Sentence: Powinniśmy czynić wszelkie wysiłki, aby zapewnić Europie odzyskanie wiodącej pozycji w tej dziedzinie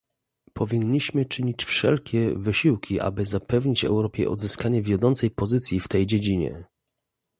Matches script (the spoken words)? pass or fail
pass